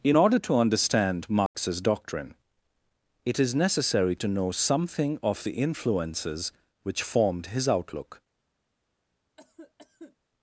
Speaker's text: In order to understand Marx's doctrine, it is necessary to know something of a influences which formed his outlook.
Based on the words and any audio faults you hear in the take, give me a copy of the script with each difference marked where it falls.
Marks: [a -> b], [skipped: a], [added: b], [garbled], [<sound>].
In order to understand Marx's [dropout] doctrine, it is necessary to know something of [a -> the] influences which formed his outlook. [cough]